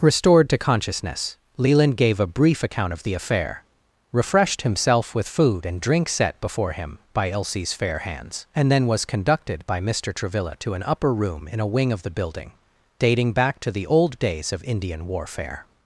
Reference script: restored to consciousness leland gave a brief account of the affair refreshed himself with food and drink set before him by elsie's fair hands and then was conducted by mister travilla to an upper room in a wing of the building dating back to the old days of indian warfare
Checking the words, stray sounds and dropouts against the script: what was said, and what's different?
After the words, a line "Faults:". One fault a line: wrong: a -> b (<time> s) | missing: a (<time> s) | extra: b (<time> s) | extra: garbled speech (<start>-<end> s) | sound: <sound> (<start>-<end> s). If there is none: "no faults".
restored to consciousness leland gave a brief account of the affair refreshed himself with food and drink set before him by elsie's fair hands and then was conducted by mister travilla to an upper room in a wing of the building dating back to the old days of indian warfare
Faults:
no faults